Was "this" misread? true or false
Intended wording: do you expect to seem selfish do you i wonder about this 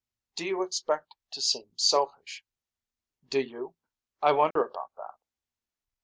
true